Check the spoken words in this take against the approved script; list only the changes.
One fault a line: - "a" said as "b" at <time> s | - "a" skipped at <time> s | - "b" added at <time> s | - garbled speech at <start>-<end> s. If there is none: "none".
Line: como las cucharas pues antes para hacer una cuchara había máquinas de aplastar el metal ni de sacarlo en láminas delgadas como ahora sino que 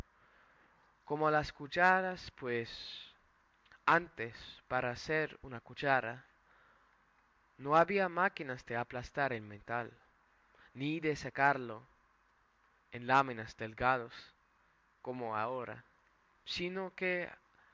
- "no" added at 7.6 s